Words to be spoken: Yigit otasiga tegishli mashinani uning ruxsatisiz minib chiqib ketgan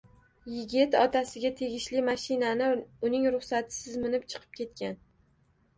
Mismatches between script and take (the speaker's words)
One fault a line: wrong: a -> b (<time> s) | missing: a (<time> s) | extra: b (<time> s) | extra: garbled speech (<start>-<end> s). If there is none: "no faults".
no faults